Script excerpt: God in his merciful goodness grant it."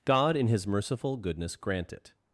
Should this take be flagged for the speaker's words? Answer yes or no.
no